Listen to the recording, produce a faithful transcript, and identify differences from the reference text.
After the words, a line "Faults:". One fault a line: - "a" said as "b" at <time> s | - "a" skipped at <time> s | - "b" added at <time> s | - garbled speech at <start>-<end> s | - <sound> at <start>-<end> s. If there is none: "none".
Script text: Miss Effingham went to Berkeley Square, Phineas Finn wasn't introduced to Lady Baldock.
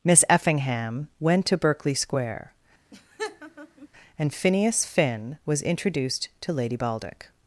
Miss Effingham went to Berkeley Square, and Phineas Finn was introduced to Lady Baldock.
Faults:
- laugh at 2.9-3.9 s
- "and" added at 4.2 s
- "wasn't" said as "was" at 5.5 s